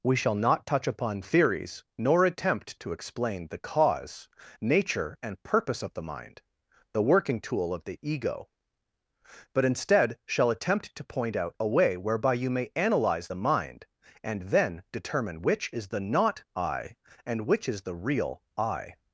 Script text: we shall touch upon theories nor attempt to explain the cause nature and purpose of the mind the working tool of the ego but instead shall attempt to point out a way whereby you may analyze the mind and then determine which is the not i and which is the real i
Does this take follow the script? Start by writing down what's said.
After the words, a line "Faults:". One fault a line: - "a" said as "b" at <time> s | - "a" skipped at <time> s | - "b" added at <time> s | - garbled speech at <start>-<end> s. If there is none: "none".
we shall not touch upon theories nor attempt to explain the cause nature and purpose of the mind the working tool of the ego but instead shall attempt to point out a way whereby you may analyze the mind and then determine which is the not i and which is the real i
Faults:
- "not" added at 0.3 s